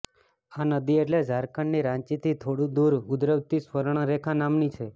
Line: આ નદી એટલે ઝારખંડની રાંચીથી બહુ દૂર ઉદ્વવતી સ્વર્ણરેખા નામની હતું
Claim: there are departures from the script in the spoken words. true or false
true